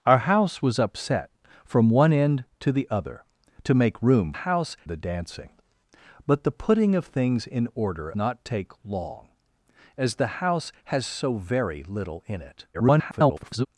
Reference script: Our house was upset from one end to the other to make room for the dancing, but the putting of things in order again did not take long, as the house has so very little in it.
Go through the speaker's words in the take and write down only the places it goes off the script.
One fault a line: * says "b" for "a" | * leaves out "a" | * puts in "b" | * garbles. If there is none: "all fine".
* says "house" for "for"
* leaves out "again did"
* garbles